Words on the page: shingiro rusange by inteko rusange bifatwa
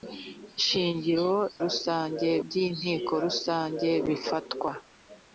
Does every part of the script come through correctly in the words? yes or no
yes